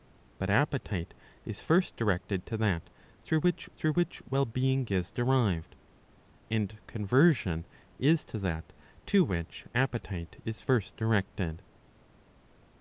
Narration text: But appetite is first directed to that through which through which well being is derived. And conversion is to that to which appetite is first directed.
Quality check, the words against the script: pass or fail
pass